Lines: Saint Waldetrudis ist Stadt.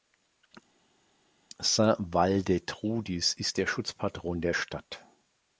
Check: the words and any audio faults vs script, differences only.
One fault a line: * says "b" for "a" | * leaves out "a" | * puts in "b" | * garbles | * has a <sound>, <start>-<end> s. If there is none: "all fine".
* puts in "der Schutzpatron der"